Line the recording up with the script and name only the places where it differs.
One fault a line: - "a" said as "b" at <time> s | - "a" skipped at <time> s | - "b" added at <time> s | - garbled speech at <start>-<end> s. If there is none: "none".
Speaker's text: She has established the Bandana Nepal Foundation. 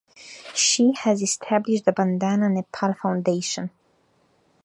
none